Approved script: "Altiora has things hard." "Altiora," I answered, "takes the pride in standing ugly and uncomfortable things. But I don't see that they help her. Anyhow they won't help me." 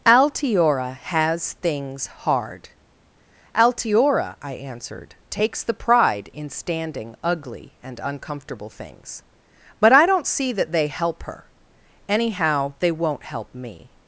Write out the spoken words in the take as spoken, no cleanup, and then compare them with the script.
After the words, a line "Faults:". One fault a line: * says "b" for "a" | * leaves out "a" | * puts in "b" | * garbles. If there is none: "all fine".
"Altiora has things hard." "Altiora," I answered, "takes the pride in standing ugly and uncomfortable things. But I don't see that they help her. Anyhow they won't help me."
Faults:
all fine